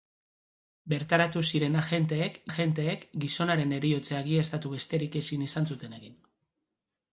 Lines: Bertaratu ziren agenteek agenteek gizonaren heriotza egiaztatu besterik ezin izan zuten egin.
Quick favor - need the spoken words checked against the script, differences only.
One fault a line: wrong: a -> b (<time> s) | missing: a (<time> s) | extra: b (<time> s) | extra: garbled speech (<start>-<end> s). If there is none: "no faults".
no faults